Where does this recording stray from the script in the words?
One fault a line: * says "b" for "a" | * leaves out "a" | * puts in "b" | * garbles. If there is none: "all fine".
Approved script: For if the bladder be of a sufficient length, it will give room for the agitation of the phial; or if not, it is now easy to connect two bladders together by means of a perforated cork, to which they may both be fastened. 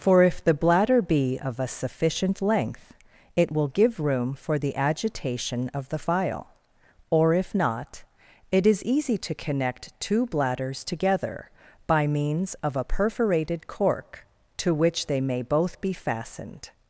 * leaves out "now"